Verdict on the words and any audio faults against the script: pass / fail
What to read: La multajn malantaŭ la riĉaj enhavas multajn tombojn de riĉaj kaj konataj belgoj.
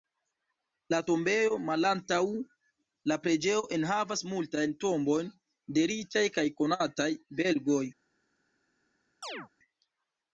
fail